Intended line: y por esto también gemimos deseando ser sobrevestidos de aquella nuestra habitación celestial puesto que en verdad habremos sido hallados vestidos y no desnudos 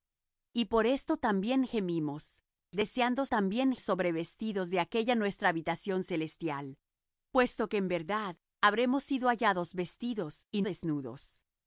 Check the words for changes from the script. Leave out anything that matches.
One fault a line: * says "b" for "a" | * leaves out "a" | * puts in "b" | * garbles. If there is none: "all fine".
* says "también" for "ser"
* leaves out "no"